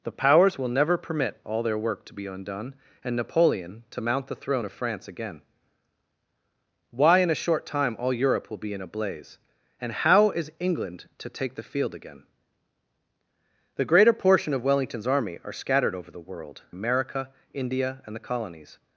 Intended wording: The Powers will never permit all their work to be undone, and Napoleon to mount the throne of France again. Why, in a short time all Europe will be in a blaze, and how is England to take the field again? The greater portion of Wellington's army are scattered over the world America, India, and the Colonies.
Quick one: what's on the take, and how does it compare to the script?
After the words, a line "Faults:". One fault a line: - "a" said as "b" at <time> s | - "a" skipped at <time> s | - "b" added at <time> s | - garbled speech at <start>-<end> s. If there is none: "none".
The Powers will never permit all their work to be undone, and Napoleon to mount the throne of France again. Why, in a short time all Europe will be in a blaze, and how is England to take the field again? The greater portion of Wellington's army are scattered over the world America, India, and the Colonies.
Faults:
none